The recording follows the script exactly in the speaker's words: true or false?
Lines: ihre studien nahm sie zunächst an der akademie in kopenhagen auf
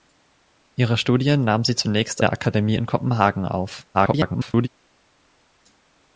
false